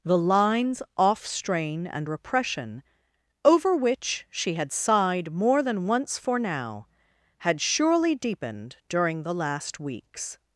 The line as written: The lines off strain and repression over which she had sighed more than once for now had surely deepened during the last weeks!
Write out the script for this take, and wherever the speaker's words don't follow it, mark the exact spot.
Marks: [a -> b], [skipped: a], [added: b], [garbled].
The lines off strain and repression over which she had sighed more than once for now had surely deepened during the last weeks!